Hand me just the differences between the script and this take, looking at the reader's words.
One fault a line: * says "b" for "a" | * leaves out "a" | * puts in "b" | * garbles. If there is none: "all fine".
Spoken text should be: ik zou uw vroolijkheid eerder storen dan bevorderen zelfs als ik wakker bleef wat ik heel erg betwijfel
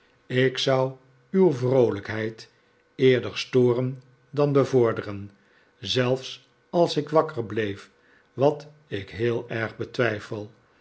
all fine